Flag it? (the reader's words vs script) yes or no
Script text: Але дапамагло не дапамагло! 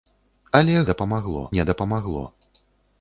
no